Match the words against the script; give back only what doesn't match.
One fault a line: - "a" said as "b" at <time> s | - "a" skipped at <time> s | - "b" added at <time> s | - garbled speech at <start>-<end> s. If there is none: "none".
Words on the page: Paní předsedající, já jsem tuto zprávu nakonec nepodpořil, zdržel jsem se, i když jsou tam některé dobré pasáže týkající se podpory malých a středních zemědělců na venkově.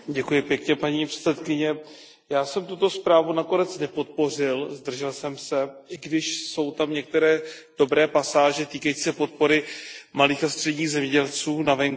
none